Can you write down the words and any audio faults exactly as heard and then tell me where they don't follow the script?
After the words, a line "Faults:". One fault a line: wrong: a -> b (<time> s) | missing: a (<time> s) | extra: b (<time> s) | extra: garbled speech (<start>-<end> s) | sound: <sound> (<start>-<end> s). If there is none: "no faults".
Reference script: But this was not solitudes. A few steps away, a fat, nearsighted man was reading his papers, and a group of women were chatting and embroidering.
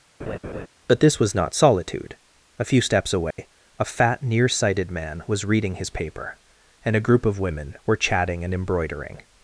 But this was not solitude. A few steps away, a fat, nearsighted man was reading his paper, and a group of women were chatting and embroidering.
Faults:
sound: laugh (0.2-0.7 s)
wrong: solitudes -> solitude (1.5 s)
sound: dropout (3.3-3.4 s)
wrong: papers -> paper (5.9 s)